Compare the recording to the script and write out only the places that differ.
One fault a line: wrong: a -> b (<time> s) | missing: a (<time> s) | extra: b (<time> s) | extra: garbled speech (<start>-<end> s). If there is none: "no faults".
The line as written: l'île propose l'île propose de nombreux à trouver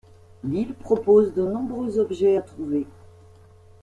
missing: l'île propose (1.3 s)
extra: objets (2.0 s)